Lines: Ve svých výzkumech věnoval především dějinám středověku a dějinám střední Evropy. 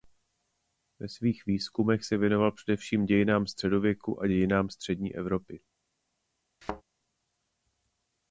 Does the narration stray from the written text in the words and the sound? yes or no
yes